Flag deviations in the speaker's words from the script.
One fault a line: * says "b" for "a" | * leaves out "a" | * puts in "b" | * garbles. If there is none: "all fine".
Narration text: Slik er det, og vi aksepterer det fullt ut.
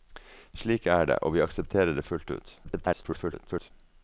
* garbles